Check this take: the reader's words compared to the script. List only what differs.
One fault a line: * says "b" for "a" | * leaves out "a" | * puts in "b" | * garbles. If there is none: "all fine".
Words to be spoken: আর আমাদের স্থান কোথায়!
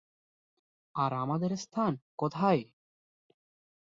all fine